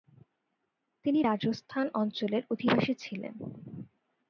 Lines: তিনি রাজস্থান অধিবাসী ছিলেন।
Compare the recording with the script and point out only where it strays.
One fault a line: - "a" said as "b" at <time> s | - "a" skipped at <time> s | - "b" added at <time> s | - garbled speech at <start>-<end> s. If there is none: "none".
- "অঞ্চলের" added at 1.9 s